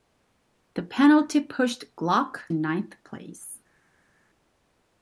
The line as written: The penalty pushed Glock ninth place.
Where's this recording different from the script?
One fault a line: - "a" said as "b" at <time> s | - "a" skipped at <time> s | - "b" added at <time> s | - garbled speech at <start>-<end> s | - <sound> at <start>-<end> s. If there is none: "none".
none